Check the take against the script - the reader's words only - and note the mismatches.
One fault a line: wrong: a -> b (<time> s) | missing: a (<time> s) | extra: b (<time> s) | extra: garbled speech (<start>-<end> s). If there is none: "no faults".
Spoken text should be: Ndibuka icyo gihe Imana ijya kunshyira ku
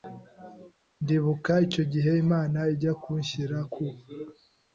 no faults